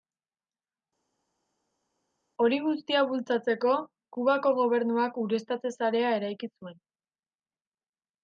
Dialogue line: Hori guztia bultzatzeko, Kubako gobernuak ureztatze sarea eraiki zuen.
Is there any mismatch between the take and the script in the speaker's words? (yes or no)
no